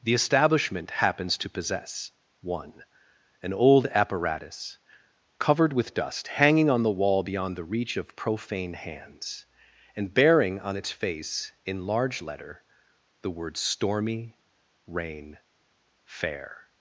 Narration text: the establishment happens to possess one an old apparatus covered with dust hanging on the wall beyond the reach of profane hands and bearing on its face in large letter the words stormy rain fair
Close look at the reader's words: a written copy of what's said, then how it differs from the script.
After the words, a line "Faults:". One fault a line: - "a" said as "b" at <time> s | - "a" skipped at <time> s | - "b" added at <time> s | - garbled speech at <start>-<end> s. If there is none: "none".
the establishment happens to possess one an old apparatus covered with dust hanging on the wall beyond the reach of profane hands and bearing on its face in large letter the words stormy rain fair
Faults:
none